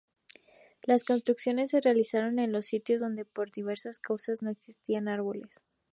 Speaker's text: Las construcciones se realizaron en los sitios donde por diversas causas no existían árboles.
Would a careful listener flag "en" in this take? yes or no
no